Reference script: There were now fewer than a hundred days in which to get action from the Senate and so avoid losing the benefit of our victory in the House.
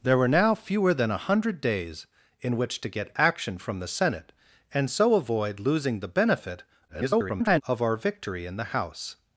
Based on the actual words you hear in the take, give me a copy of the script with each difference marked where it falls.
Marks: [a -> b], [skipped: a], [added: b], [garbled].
There were now fewer than a hundred days in which to get action from the Senate and so avoid losing the benefit [garbled] of our victory in the House.